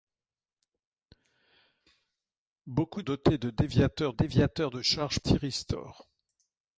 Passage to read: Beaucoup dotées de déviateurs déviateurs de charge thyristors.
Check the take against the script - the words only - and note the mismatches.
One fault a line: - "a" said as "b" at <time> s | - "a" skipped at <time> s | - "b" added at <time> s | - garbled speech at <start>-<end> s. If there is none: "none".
none